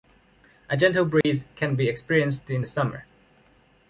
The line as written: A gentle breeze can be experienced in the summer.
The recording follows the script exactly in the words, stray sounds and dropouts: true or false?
false